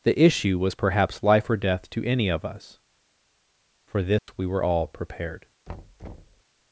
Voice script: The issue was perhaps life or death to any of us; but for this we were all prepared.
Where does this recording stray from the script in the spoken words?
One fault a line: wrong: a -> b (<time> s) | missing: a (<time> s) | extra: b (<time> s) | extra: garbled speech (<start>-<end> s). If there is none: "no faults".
missing: but (2.8 s)